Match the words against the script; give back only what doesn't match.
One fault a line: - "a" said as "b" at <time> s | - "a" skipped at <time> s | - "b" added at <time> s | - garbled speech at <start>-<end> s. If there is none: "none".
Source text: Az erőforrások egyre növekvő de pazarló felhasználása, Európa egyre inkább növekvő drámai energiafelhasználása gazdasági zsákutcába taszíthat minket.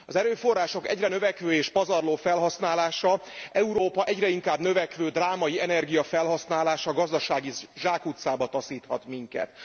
- "de" said as "és" at 1.5 s